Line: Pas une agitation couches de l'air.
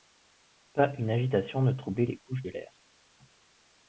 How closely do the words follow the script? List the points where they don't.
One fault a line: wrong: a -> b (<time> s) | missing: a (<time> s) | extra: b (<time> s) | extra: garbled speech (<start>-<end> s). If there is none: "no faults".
extra: ne troublait les (1.6 s)